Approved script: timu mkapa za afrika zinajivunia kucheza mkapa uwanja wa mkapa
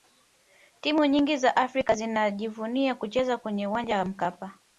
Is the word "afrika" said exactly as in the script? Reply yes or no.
yes